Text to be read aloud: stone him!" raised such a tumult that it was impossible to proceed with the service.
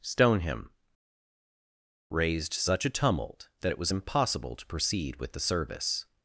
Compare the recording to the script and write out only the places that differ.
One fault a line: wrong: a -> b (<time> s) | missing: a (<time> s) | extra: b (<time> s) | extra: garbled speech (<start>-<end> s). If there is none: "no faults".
no faults